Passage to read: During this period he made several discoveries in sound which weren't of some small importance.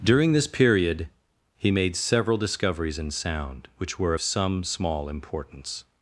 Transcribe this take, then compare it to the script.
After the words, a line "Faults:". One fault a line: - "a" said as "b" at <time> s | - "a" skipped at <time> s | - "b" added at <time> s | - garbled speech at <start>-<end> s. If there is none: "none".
During this period he made several discoveries in sound which were of some small importance.
Faults:
- "weren't" said as "were" at 4.0 s